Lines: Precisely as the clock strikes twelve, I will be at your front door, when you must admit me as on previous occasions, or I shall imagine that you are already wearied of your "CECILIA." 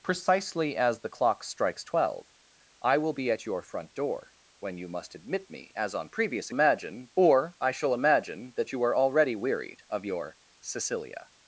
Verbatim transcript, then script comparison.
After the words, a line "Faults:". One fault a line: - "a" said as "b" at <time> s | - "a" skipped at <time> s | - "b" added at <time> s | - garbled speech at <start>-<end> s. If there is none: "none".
Precisely as the clock strikes twelve, I will be at your front door, when you must admit me as on previous imagine, or I shall imagine that you are already wearied of your "CECILIA."
Faults:
- "occasions" said as "imagine" at 6.5 s